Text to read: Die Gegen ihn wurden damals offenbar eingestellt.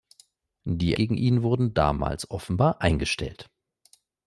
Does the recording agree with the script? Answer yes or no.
yes